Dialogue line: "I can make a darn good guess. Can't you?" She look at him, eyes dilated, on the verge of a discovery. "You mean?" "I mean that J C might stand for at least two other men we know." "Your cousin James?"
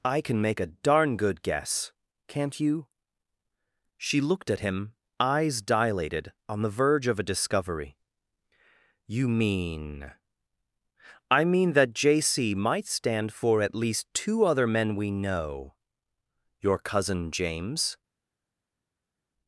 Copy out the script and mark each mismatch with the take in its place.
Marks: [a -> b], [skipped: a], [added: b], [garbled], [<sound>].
"I can make a darn good guess. Can't you?" She [look -> looked] at him, eyes dilated, on the verge of a discovery. "You mean?" "I mean that J C might stand for at least two other men we know." "Your cousin James?"